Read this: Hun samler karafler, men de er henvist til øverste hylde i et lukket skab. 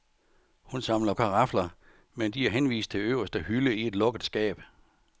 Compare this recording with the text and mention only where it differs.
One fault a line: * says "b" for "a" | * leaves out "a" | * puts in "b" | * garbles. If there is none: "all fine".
all fine